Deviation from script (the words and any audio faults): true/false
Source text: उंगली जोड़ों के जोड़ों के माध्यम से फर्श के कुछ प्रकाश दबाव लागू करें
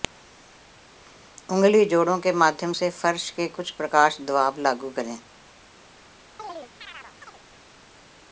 true